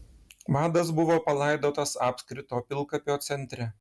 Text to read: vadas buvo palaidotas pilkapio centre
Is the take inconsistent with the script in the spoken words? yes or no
yes